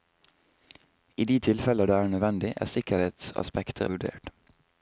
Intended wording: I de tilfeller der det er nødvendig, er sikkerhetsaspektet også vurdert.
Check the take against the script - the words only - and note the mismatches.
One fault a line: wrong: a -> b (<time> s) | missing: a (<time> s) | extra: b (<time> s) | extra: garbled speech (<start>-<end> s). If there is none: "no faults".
missing: der (1.9 s)
missing: også (3.9 s)